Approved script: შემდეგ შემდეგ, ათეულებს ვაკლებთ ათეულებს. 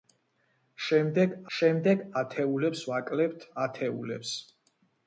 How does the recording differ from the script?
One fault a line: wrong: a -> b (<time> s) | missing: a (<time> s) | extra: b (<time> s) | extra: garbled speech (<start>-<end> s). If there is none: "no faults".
no faults